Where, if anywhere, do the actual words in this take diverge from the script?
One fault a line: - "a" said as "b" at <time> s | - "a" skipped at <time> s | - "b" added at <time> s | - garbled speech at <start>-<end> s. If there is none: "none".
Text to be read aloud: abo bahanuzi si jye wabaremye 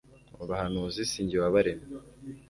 none